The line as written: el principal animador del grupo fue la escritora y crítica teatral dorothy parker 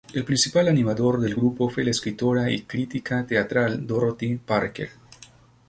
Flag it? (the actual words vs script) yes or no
no